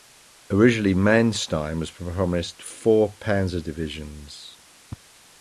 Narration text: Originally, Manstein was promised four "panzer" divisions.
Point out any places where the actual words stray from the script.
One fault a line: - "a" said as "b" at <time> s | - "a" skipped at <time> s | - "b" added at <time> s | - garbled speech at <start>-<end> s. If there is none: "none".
none